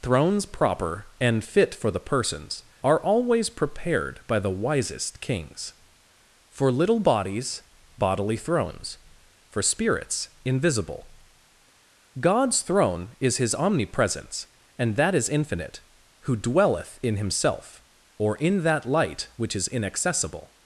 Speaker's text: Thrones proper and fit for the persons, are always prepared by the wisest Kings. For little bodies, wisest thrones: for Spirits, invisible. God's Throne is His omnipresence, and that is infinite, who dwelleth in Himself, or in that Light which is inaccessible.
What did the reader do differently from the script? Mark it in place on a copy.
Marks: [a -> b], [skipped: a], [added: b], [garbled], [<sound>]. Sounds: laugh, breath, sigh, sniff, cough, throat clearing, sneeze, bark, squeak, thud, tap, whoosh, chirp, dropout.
Thrones proper and fit for the persons, are always prepared by the wisest Kings. For little bodies, [wisest -> bodily] thrones: for Spirits, invisible. God's Throne is His omnipresence, and that is infinite, who dwelleth in Himself, or in that Light which is inaccessible.